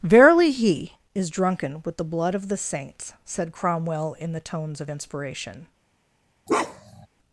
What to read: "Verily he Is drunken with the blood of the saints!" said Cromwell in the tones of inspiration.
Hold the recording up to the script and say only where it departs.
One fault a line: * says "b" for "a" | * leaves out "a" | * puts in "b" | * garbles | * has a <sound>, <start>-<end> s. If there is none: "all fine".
* has a bark, 6.5-7.1 s